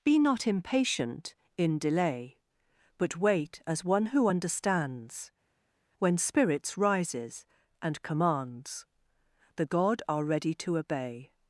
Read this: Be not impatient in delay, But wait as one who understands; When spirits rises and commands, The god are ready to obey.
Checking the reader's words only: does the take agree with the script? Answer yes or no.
yes